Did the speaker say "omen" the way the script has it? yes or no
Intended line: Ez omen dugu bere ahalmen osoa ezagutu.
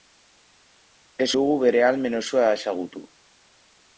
no